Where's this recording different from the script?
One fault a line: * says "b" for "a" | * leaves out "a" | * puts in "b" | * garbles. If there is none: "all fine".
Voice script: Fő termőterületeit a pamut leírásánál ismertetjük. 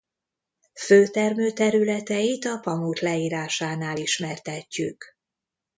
all fine